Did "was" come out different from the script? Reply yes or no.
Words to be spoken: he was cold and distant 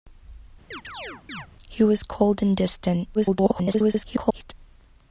no